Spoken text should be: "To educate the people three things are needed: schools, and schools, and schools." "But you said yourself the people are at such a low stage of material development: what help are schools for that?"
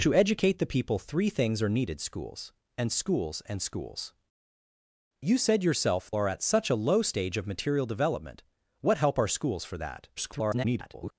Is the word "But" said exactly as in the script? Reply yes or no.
no